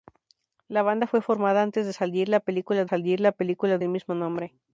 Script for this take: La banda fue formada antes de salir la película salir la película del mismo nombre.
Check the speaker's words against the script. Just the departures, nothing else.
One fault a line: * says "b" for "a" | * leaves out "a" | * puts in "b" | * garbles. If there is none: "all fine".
all fine